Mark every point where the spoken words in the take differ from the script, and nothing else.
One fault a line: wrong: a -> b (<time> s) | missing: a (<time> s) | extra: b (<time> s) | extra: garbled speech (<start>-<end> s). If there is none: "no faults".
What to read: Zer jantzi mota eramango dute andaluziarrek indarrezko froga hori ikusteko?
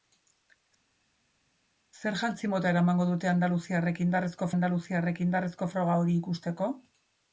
extra: andaluziarrek indarrezko (4.5 s)